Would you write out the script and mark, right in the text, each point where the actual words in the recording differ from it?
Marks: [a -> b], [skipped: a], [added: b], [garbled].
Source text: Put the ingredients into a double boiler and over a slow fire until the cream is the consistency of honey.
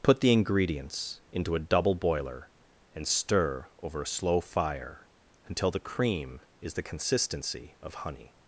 Put the ingredients into a double boiler and [added: stir] over a slow fire until the cream is the consistency of honey.